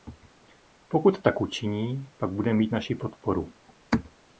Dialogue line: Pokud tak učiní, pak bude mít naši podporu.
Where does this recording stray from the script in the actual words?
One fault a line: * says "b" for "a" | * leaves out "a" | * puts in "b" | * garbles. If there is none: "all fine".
all fine